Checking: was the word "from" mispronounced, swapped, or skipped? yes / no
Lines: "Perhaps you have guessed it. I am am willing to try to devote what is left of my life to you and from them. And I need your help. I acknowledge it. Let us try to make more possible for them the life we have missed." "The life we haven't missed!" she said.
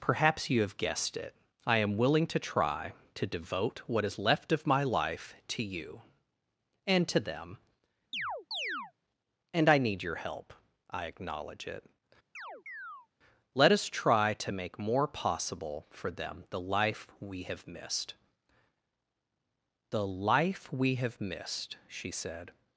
yes